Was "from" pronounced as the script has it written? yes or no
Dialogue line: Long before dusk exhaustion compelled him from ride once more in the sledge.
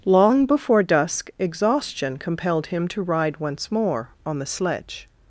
no